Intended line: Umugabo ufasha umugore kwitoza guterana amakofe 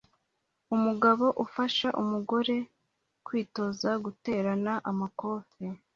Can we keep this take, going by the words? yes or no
yes